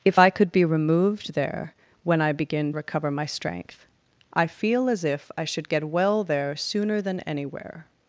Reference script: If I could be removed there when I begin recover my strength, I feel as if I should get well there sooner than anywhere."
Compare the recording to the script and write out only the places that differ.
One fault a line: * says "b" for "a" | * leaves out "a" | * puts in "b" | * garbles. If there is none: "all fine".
all fine